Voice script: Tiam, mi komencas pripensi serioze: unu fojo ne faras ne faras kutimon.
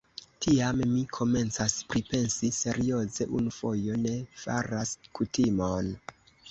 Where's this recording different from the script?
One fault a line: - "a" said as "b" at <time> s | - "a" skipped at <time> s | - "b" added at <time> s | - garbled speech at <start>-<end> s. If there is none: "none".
- "ne faras" skipped at 5.0 s